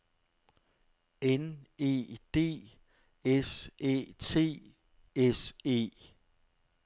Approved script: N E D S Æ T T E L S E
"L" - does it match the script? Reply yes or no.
no